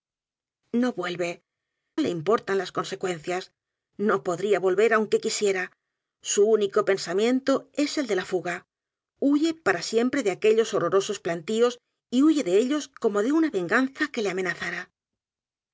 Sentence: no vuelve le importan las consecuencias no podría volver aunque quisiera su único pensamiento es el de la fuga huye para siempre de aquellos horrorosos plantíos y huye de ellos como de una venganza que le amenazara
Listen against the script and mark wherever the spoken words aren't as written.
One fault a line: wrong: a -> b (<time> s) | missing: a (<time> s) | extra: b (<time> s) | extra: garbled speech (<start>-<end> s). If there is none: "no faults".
no faults